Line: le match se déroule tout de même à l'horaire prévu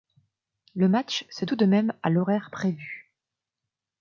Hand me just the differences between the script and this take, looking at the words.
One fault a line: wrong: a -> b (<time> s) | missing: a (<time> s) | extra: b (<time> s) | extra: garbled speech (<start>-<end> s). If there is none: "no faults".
missing: déroule (1.4 s)